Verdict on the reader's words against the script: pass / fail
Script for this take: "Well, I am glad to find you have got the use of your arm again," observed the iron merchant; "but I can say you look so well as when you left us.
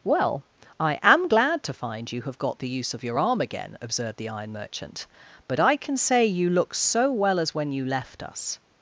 pass